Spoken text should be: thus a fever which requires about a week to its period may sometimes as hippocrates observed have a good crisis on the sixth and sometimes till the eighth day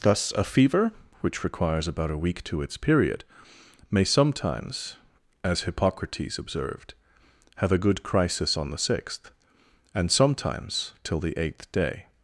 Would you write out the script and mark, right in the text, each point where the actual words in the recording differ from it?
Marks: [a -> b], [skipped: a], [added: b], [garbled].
thus a fever which requires about a week to its period may sometimes as hippocrates observed have a good crisis on the sixth and sometimes till the eighth day